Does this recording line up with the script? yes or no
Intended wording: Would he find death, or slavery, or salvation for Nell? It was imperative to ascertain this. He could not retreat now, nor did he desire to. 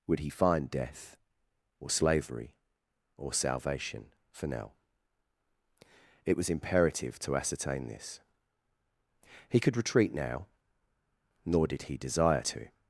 no